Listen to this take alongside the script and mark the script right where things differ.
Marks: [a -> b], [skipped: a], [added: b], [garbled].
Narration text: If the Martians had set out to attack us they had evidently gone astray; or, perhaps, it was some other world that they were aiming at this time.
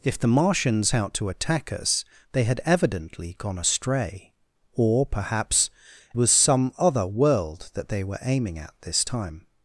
If the Martians [skipped: had set] out to attack us they had evidently gone astray; or, perhaps, [skipped: it] was some other world that they were aiming at this time.